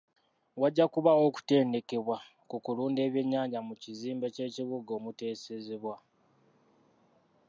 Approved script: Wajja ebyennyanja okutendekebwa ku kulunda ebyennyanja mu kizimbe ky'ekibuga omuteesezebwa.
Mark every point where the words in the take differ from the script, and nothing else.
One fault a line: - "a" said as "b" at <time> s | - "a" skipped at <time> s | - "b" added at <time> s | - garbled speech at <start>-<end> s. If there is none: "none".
- "ebyennyanja" said as "kubaawo" at 0.9 s